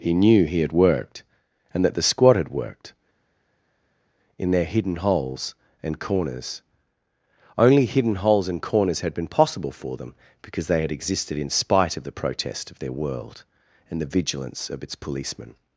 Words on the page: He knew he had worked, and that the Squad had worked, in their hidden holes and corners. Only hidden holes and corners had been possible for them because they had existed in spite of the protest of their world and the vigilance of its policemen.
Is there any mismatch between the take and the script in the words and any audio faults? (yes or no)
no